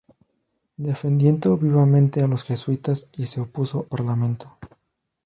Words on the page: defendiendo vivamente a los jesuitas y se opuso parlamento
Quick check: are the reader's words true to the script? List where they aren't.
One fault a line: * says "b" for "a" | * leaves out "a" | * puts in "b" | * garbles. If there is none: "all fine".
all fine